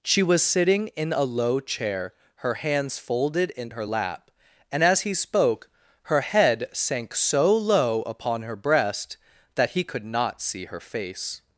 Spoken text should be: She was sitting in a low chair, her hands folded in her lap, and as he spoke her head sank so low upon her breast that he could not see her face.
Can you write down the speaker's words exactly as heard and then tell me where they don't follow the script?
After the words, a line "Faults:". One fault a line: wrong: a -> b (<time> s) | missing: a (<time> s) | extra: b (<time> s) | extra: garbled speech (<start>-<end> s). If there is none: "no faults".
She was sitting in a low chair, her hands folded in her lap, and as he spoke her head sank so low upon her breast that he could not see her face.
Faults:
no faults